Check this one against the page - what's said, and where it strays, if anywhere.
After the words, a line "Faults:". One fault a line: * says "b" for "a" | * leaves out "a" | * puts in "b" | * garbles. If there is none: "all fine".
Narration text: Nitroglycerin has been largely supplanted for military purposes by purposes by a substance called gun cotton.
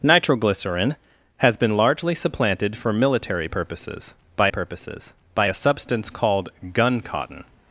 Nitroglycerin has been largely supplanted for military purposes by purposes by a substance called gun cotton.
Faults:
all fine